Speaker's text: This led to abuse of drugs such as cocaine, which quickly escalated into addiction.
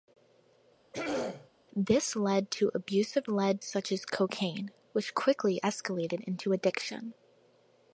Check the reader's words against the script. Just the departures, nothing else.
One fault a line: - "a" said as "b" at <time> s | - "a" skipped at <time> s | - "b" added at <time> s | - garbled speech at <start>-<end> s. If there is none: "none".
- "drugs" said as "led" at 3.3 s